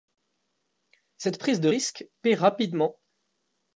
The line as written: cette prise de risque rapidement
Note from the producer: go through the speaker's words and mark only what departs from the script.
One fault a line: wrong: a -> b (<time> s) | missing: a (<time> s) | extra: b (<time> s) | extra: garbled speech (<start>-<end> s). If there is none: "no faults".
extra: paie (2.2 s)